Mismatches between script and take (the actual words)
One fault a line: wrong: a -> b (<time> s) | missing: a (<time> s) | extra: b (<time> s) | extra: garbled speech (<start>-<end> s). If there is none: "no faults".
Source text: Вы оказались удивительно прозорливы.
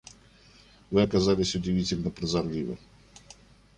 no faults